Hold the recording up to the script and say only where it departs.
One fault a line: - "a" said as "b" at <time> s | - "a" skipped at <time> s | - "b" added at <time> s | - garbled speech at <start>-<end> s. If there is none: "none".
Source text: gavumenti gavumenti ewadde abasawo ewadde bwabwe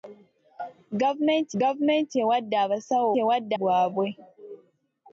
none